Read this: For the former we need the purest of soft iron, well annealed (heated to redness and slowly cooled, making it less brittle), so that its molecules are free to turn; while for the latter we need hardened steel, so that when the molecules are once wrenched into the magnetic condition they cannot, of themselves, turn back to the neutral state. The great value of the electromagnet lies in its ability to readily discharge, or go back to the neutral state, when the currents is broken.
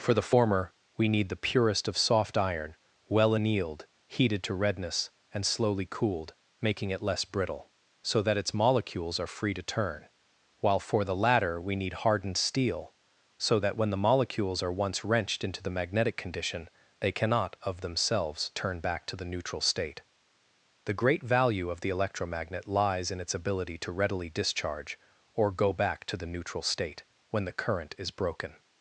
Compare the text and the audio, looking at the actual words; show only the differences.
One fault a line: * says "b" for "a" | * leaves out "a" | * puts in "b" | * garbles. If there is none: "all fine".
* says "current" for "currents"